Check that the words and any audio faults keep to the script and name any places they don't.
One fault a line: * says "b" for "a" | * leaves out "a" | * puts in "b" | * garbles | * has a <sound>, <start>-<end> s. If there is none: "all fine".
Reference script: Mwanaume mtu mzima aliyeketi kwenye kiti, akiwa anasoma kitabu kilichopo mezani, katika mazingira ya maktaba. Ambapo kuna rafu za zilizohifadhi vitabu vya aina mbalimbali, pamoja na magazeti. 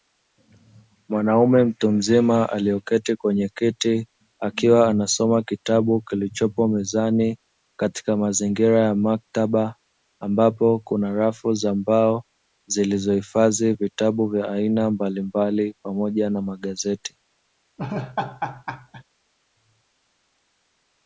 * puts in "mbao"
* has a laugh, 17.8-19.0 s